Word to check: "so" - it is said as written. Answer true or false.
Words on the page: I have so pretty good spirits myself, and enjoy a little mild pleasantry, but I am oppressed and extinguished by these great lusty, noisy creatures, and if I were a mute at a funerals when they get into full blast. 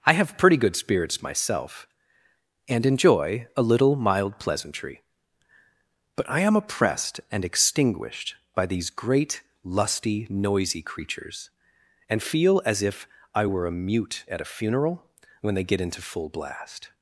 false